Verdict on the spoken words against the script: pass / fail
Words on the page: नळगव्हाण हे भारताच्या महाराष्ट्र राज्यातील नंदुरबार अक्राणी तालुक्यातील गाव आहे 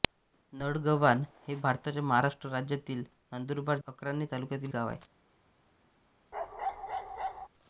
pass